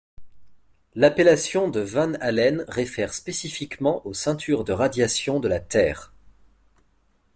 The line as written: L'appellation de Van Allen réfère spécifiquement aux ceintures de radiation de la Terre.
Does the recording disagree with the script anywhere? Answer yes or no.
no